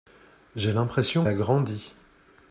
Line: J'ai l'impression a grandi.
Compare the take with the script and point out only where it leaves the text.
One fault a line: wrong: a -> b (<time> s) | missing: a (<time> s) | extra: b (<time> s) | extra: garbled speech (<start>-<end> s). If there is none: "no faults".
no faults